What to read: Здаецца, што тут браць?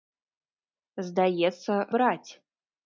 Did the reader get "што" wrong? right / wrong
wrong